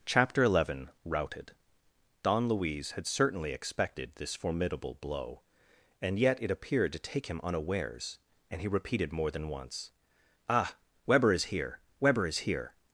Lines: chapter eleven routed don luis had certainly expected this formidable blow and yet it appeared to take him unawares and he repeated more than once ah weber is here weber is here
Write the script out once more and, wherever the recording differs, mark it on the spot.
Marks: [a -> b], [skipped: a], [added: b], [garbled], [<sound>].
chapter eleven routed don luis had certainly expected this formidable blow and yet it appeared to take him unawares and he repeated more than once ah weber is here weber is here